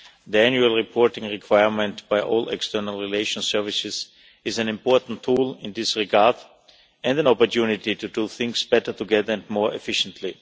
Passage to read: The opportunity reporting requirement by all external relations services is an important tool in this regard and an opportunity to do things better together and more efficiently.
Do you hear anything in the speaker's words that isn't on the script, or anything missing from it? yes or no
yes